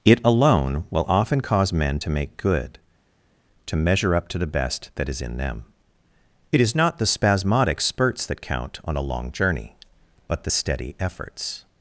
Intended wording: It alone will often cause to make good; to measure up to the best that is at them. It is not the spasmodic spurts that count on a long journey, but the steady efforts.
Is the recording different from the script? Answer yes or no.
yes